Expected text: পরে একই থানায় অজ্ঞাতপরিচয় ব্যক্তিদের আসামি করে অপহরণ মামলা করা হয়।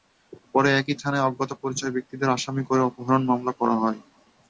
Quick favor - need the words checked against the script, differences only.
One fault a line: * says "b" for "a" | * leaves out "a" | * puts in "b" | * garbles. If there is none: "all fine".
all fine